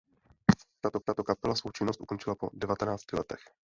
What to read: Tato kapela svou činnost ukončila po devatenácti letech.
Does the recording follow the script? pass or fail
fail